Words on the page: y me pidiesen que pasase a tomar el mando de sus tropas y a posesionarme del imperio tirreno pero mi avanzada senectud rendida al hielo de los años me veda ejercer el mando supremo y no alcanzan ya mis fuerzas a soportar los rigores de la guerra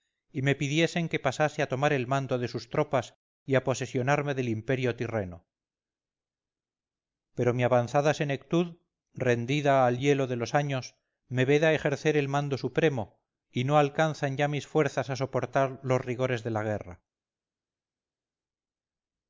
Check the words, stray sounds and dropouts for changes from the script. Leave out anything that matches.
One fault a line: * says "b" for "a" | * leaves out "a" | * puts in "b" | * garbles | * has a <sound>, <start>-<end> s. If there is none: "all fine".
all fine